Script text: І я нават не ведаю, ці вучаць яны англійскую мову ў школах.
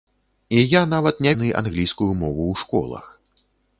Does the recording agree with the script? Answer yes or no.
no